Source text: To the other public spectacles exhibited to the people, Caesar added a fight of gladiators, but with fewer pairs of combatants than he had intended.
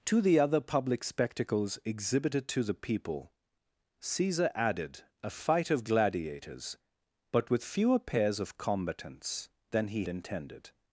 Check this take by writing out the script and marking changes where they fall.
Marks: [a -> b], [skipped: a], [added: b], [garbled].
To the other public spectacles exhibited to the people, Caesar added a fight of gladiators, but with fewer pairs of combatants than he [skipped: had] intended.